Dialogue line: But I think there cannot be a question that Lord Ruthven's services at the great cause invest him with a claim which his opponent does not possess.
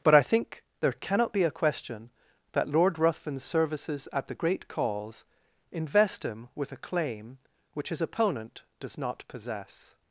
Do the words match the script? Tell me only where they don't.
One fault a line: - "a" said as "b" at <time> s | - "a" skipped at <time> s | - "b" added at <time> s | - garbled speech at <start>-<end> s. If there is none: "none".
none